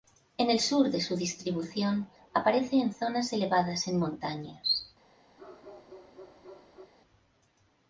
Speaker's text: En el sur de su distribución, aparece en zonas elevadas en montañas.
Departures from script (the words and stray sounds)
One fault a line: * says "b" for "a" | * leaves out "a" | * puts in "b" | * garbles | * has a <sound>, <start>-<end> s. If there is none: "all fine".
* has a bark, 5.4-6.9 s